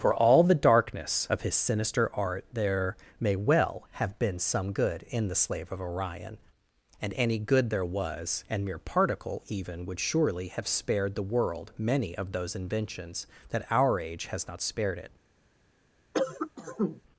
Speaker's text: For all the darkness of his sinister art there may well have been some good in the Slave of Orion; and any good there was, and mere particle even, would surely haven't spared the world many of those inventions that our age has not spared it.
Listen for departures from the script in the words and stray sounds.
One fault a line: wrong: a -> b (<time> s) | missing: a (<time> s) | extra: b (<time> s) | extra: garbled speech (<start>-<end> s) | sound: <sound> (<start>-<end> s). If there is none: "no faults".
wrong: haven't -> have (10.5 s)
sound: cough (16.1-17.0 s)